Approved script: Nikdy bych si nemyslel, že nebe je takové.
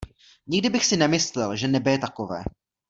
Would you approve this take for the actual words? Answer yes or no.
yes